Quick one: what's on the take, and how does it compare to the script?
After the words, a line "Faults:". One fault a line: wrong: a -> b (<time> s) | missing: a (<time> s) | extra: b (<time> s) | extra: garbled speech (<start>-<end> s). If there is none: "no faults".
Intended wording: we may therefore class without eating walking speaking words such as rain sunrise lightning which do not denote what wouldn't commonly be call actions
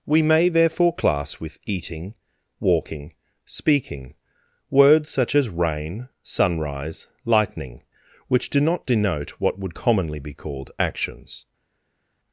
we may therefore class with eating walking speaking words such as rain sunrise lightning which do not denote what would commonly be called actions
Faults:
wrong: without -> with (1.4 s)
wrong: wouldn't -> would (9.6 s)
wrong: call -> called (10.3 s)